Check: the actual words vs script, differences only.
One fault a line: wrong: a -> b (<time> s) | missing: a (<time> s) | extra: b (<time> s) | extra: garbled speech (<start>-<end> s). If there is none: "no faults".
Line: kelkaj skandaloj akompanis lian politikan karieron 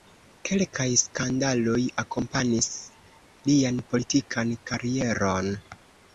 no faults